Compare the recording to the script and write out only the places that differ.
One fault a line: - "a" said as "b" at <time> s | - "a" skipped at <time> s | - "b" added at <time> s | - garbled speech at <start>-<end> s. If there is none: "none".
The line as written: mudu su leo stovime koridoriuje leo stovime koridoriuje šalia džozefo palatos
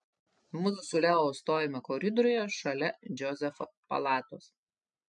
- "leo stovime koridoriuje" skipped at 2.4 s